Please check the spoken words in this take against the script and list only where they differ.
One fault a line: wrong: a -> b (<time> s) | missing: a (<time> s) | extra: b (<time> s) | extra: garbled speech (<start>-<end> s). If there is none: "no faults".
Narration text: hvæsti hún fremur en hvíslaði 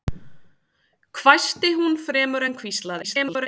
extra: garbled speech (3.0-3.5 s)